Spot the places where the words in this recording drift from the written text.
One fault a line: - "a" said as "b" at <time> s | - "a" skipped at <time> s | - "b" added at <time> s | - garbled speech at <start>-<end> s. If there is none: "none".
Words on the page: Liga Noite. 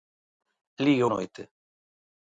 none